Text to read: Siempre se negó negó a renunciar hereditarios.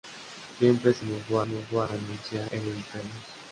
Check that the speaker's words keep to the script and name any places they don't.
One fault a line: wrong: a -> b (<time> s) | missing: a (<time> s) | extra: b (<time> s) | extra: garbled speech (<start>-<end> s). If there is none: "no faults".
no faults